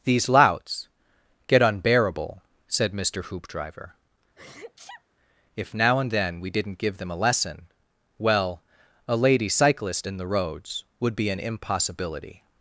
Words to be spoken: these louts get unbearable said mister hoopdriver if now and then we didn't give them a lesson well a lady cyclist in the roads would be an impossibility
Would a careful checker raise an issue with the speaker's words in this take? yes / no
no